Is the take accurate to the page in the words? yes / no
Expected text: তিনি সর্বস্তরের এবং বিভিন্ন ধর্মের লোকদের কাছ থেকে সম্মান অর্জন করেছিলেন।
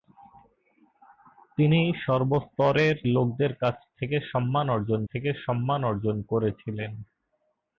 no